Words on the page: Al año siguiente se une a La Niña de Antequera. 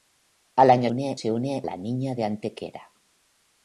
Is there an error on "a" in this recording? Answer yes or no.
yes